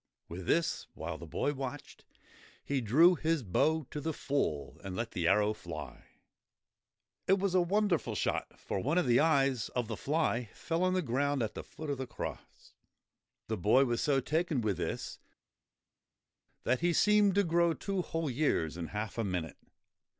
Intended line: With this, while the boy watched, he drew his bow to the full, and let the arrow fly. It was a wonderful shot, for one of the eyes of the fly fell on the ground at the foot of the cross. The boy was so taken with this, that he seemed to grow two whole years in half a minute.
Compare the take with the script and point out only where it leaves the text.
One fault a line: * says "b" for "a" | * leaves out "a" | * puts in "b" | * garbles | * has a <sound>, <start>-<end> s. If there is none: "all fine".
all fine